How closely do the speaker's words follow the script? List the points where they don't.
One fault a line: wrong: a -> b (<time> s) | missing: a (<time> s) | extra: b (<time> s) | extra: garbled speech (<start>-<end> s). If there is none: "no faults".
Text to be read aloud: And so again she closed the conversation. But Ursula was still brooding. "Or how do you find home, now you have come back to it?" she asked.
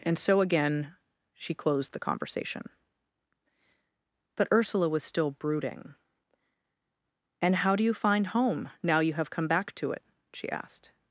wrong: Or -> And (7.4 s)